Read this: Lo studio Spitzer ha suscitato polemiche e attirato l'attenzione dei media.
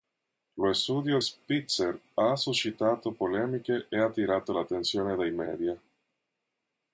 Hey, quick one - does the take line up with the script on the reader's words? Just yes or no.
yes